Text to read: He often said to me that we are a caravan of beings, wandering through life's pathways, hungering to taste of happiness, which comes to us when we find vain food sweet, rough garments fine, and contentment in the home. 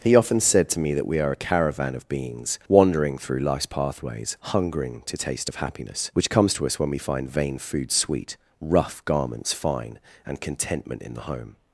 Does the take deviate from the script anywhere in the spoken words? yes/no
no